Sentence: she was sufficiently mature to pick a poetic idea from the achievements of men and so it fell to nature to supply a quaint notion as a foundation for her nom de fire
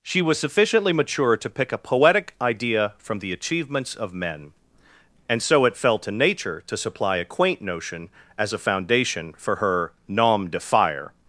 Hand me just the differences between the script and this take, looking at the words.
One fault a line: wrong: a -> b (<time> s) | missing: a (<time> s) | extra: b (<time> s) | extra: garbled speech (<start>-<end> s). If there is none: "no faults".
no faults